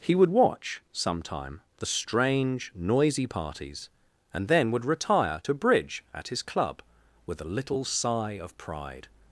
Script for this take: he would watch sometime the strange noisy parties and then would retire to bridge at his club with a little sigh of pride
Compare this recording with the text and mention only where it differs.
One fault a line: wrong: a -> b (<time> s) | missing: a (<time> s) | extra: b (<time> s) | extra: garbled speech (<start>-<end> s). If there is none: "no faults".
no faults